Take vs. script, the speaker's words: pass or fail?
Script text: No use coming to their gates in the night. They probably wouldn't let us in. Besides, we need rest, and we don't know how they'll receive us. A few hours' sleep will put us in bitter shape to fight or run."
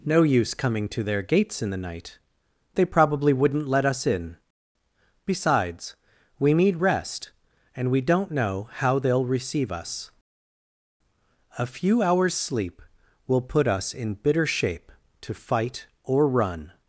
pass